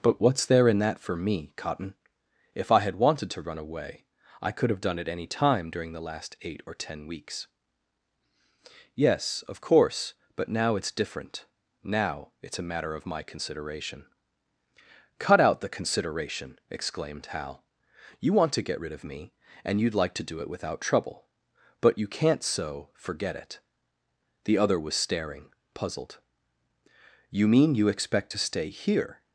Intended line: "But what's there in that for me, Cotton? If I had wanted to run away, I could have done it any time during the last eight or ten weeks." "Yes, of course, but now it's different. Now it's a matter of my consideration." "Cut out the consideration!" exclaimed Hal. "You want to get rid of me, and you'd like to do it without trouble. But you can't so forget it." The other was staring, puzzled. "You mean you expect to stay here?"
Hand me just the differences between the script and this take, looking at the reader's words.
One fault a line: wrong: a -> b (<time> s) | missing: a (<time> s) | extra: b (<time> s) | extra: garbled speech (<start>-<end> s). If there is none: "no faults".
no faults